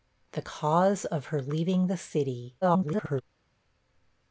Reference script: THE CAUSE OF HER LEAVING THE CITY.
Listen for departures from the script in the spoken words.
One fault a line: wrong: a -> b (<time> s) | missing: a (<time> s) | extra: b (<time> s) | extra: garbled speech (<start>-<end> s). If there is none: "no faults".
extra: garbled speech (2.6-3.2 s)